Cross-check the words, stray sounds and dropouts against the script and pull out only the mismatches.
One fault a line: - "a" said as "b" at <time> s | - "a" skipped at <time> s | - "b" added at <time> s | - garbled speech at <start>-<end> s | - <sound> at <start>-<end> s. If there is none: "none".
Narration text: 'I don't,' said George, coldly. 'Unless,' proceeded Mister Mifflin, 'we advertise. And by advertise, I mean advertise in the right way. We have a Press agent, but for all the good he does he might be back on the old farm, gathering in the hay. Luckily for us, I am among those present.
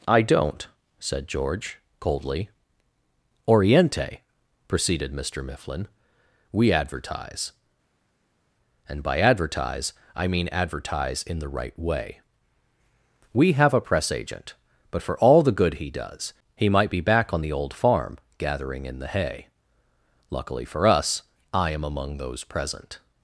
- "Unless" said as "Oriente" at 3.5 s